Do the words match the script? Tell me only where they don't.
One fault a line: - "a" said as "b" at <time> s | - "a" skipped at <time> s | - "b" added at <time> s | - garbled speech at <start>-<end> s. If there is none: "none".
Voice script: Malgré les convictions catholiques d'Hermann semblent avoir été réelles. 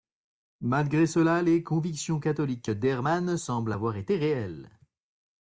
- "cela" added at 1.1 s